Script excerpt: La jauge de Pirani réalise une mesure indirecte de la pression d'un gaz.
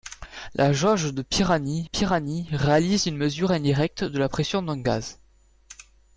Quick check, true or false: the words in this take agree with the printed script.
false